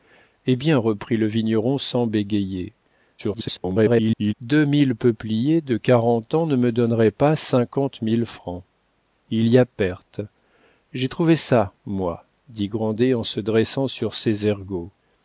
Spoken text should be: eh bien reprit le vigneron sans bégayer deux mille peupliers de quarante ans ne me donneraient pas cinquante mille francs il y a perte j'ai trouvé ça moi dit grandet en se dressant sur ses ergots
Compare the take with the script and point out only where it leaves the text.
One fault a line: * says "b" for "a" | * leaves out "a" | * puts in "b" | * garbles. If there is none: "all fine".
* garbles